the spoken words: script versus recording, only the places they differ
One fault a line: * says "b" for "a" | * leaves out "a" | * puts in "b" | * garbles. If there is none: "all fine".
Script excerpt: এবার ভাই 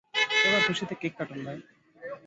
* puts in "খুশিতে কেক কাটুন"